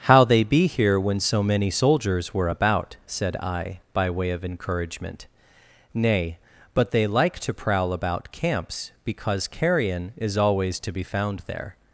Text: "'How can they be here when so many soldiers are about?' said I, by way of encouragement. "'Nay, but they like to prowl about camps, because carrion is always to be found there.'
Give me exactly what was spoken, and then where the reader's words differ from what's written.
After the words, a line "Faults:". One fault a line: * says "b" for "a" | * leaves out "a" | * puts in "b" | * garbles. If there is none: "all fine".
"'How they be here when so many soldiers were about?' said I, by way of encouragement. "'Nay, but they like to prowl about camps, because carrion is always to be found there.'
Faults:
* leaves out "can"
* says "were" for "are"